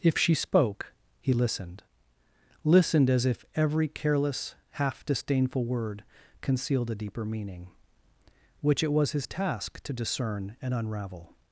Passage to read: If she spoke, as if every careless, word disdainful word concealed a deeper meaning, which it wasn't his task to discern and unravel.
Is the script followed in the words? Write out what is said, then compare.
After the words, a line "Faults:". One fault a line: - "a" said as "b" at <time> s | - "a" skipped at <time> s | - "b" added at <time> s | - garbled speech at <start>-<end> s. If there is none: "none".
If she spoke, he listened listened as if every careless, half disdainful word concealed a deeper meaning, which it was his task to discern and unravel.
Faults:
- "he listened listened" added at 1.2 s
- "word" said as "half" at 4.7 s
- "wasn't" said as "was" at 8.9 s